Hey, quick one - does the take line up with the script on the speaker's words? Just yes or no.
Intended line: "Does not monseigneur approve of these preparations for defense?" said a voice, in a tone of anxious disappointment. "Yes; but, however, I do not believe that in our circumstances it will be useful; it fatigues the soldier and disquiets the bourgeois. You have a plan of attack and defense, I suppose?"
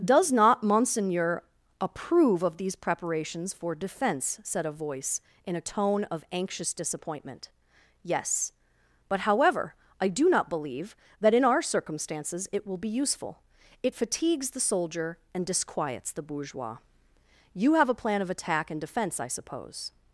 yes